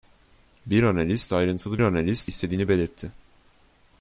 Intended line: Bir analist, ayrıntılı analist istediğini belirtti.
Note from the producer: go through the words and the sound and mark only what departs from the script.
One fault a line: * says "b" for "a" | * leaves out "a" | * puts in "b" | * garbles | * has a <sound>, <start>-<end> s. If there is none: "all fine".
all fine